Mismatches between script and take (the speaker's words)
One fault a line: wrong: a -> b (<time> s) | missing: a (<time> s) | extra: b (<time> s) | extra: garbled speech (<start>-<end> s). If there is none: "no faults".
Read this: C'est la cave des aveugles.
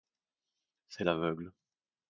missing: la cave des (1.1 s)